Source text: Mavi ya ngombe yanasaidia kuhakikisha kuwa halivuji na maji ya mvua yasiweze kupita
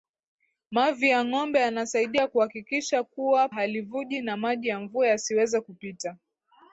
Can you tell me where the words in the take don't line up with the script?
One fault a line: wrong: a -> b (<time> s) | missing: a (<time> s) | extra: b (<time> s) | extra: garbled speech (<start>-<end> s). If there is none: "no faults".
no faults